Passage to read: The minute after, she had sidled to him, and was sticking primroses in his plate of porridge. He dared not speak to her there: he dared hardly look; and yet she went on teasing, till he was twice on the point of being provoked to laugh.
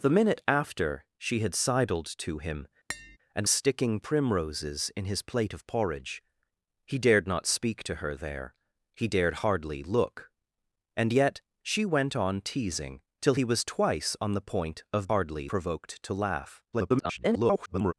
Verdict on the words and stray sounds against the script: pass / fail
fail